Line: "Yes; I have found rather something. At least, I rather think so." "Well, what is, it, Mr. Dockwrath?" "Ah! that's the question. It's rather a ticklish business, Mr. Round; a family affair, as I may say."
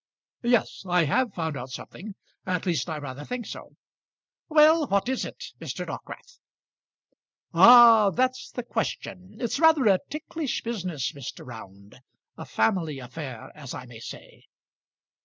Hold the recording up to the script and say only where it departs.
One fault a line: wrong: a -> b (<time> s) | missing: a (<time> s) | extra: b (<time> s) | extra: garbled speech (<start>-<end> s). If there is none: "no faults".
wrong: rather -> out (1.6 s)